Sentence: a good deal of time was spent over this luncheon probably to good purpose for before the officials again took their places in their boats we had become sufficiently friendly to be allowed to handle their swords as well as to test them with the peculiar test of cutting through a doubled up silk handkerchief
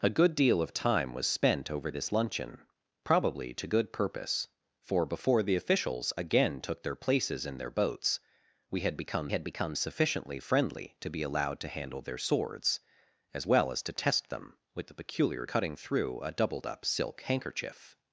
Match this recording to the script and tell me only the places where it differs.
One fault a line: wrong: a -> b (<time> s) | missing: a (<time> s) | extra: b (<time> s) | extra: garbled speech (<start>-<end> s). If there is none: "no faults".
extra: had become (9.3 s)
missing: test of (15.5 s)